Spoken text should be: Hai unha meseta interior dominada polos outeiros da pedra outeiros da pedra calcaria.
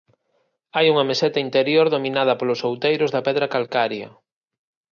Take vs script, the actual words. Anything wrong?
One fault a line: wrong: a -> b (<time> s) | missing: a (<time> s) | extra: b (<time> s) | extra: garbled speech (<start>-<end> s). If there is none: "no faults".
missing: outeiros da pedra (3.5 s)